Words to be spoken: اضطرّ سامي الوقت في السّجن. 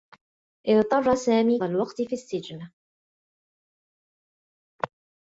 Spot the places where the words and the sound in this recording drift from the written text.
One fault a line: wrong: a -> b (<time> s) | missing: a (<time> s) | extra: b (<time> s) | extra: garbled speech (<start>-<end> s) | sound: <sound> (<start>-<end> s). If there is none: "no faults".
no faults